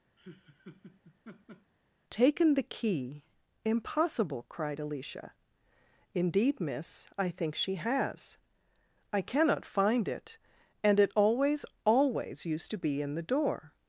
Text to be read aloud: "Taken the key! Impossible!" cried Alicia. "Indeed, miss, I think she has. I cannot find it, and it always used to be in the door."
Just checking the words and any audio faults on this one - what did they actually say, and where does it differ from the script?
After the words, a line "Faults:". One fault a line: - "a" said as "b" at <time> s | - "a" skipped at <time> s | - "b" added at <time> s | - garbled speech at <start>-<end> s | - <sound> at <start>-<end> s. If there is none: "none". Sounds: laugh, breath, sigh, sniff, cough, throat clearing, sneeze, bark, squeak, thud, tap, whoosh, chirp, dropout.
"Taken the key! Impossible!" cried Alicia. "Indeed, miss, I think she has. I cannot find it, and it always always used to be in the door."
Faults:
- laugh at 0.2-1.7 s
- "always" added at 11.8 s